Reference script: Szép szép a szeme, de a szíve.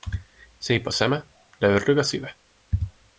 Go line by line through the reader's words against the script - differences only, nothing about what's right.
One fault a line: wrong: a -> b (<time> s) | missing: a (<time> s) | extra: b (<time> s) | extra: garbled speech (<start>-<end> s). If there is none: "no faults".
missing: szép (0.9 s)
extra: ördög (1.7 s)